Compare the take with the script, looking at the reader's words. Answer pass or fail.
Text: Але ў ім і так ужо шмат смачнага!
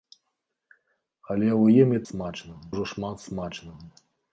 fail